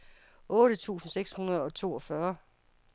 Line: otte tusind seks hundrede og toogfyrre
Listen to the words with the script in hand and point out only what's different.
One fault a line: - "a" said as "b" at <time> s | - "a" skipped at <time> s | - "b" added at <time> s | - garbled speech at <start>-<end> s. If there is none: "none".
none